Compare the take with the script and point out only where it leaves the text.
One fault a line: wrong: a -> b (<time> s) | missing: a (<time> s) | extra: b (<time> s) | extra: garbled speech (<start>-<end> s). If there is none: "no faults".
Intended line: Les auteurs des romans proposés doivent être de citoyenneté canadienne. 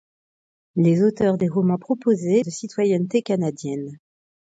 missing: doivent être (2.4 s)